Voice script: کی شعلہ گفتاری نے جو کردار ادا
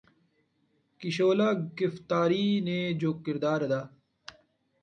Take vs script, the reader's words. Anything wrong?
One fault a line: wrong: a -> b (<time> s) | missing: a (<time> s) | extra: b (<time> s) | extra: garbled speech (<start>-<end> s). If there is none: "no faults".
no faults